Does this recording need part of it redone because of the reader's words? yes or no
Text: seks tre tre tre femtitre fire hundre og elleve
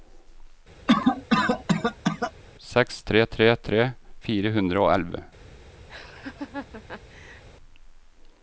yes